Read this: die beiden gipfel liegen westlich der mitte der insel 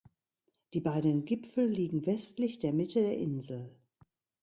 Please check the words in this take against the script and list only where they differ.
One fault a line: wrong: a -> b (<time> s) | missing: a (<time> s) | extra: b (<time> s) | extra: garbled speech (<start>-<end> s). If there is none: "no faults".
no faults